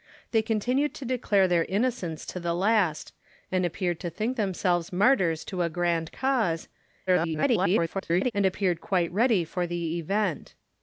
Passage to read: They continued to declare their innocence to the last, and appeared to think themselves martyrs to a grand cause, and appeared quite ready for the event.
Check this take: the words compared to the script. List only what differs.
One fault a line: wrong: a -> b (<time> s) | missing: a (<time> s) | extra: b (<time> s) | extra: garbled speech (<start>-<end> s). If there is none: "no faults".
extra: garbled speech (7.1-8.3 s)